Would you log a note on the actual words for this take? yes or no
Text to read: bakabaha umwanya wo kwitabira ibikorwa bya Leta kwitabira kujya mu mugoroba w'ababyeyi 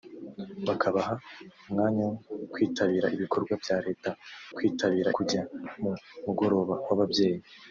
no